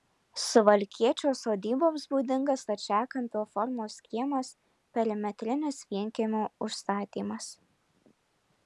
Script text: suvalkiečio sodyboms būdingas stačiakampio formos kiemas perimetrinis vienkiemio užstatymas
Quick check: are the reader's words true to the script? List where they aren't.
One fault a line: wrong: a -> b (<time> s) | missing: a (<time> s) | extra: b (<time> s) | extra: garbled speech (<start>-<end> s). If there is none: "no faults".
no faults